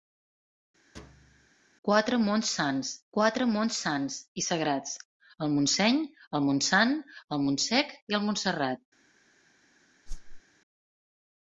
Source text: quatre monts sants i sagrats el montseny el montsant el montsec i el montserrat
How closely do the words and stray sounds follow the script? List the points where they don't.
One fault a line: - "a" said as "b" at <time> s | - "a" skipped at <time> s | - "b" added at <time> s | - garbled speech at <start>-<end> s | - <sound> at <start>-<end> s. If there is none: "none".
- thud at 0.9-1.5 s
- "quatre monts sants" added at 3.2 s
- whoosh at 10.1-10.4 s